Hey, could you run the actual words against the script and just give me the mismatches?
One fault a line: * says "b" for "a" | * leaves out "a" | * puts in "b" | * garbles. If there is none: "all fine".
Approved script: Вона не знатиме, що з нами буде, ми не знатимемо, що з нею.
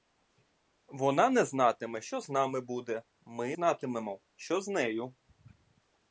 * leaves out "не"